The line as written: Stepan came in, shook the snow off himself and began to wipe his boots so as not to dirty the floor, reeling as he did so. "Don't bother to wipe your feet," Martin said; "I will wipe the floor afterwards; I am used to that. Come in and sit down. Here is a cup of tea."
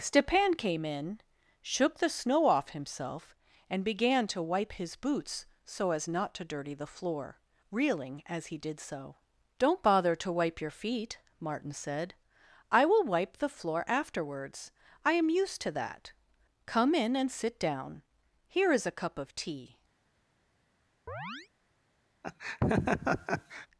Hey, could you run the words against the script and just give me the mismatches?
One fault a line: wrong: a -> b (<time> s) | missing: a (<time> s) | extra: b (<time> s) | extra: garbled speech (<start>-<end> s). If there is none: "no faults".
no faults